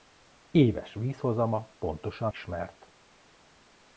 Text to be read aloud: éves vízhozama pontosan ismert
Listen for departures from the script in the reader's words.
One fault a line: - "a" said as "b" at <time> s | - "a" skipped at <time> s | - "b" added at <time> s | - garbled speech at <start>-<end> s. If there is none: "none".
none